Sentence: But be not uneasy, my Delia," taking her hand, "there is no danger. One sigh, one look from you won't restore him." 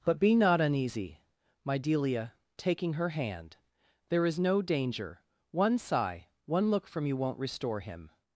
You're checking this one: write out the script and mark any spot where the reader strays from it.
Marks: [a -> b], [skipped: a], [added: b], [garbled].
But be not uneasy, my Delia," taking her hand, "there is no danger. One sigh, one look from you won't restore him."